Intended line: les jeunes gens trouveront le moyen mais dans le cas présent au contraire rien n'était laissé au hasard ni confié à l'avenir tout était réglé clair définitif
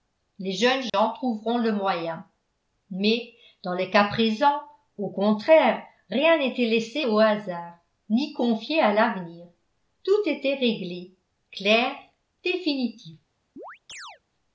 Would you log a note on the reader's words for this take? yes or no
no